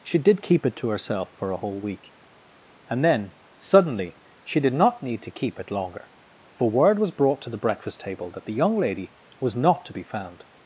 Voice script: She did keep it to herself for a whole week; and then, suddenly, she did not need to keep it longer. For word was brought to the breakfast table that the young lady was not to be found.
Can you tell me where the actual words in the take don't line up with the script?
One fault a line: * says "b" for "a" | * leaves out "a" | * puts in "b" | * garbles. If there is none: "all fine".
all fine